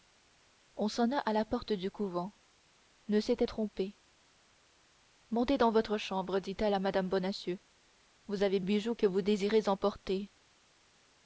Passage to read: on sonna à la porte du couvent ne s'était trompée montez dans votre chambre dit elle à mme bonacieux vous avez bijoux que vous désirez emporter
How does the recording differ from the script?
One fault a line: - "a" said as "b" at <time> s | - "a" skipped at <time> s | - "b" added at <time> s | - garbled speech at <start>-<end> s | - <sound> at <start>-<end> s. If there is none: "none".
none